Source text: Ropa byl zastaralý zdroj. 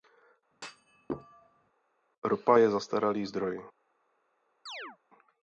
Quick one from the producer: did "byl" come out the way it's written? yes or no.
no